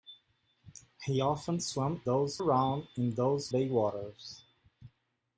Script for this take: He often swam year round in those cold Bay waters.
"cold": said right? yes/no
no